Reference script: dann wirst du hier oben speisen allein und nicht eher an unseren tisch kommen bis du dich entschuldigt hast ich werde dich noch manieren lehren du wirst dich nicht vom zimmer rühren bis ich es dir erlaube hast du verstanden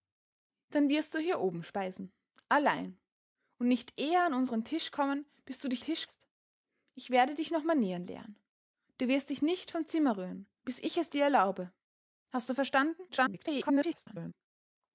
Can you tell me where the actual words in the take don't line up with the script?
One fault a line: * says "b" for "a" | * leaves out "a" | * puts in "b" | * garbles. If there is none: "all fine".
* says "tisch" for "entschuldigt"
* garbles